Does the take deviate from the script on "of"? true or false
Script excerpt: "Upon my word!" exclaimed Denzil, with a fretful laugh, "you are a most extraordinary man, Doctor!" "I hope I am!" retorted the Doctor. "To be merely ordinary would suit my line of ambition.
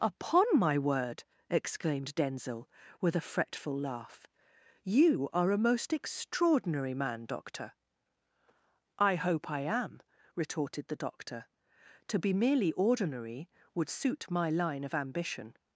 false